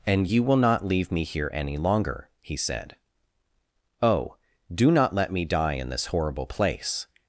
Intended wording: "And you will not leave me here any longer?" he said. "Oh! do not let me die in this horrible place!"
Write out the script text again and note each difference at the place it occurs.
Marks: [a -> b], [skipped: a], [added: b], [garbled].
"And you will not leave me here any longer?" he said. "Oh! do not let me die in this horrible place!"